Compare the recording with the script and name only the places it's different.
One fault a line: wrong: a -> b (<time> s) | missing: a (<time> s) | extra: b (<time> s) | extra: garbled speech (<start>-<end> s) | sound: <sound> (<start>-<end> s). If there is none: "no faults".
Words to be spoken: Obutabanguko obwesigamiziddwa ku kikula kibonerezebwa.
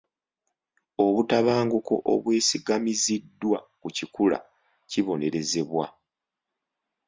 no faults